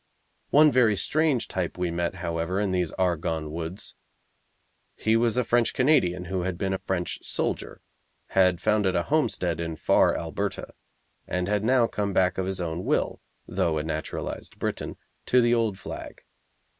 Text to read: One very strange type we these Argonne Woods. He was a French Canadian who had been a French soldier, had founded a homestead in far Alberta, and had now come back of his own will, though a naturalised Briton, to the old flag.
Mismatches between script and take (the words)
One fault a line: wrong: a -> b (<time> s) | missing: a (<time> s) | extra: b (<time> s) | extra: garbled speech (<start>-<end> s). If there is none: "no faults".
extra: met however in (1.9 s)